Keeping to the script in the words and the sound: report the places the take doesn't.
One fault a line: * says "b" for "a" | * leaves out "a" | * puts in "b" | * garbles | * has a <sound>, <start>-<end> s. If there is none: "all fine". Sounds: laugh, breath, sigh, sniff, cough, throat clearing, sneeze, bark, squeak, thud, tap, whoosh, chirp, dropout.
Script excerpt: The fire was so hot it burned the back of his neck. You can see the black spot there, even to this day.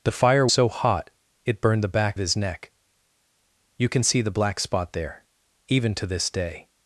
* leaves out "was"
* leaves out "of"